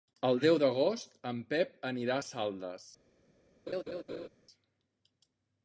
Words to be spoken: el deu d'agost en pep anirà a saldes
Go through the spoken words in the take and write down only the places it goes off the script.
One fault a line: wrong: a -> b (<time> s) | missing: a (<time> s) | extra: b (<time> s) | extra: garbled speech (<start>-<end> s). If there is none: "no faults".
no faults